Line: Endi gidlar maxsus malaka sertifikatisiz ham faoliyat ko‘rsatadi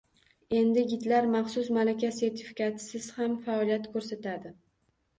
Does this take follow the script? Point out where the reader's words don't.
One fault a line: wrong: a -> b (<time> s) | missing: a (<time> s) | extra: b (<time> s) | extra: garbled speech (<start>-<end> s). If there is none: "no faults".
no faults